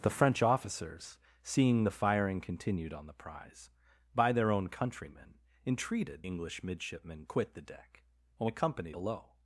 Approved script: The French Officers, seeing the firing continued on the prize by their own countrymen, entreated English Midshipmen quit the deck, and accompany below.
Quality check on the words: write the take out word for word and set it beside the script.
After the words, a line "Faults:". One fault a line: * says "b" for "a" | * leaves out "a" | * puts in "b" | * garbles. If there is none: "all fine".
The French Officers, seeing the firing continued on the prize by their own countrymen, entreated English Midshipmen quit the deck, and accompany below.
Faults:
all fine